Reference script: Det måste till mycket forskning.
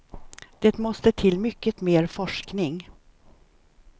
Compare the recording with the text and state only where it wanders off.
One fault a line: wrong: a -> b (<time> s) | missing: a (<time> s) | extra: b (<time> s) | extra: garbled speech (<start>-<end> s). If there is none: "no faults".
extra: mer (1.8 s)